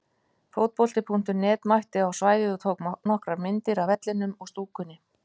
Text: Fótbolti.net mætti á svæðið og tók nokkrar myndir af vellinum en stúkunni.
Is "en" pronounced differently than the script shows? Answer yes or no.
yes